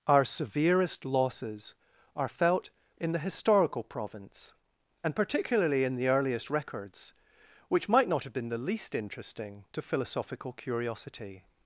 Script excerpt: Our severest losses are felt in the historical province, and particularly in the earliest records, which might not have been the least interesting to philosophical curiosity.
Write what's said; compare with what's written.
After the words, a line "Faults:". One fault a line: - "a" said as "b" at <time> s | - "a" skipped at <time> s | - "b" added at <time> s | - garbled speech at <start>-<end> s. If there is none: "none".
Our severest losses are felt in the historical province, and particularly in the earliest records, which might not have been the least interesting to philosophical curiosity.
Faults:
none